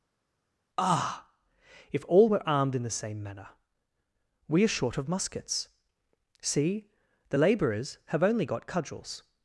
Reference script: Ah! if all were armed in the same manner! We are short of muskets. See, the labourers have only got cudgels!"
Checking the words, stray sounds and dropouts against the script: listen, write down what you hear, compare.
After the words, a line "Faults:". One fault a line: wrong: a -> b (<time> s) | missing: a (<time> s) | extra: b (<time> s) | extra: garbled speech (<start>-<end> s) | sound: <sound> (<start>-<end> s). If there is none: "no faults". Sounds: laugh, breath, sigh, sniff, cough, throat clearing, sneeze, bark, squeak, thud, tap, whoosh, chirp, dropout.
Ah! if all were armed in the same manner! We are short of muskets. See, the labourers have only got cudgels!"
Faults:
no faults